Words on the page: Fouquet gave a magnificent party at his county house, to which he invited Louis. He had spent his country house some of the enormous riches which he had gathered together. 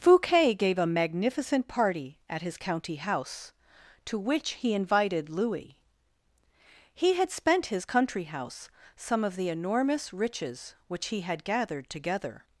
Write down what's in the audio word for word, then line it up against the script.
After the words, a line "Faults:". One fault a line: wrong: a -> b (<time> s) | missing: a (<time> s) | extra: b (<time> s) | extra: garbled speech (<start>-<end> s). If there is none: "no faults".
Fouquet gave a magnificent party at his county house, to which he invited Louis. He had spent his country house some of the enormous riches which he had gathered together.
Faults:
no faults